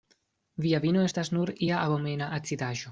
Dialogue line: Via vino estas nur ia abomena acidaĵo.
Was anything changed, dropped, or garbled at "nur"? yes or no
no